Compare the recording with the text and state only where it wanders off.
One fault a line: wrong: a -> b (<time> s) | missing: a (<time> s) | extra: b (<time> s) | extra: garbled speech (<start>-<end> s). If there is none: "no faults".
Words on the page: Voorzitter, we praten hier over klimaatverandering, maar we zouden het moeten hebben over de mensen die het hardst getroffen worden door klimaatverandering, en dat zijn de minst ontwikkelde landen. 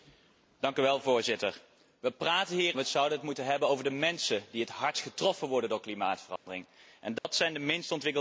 missing: over klimaatverandering maar (2.8 s)